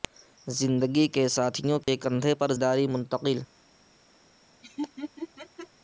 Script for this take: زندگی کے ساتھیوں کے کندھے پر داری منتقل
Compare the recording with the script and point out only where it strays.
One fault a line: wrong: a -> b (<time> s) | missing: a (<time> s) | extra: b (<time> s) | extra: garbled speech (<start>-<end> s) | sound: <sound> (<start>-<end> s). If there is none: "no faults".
sound: dropout (1.8-1.9 s)
sound: laugh (4.6-5.7 s)